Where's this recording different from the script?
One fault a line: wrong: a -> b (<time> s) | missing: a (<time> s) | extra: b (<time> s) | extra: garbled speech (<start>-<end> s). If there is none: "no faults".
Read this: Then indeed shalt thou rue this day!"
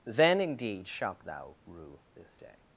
no faults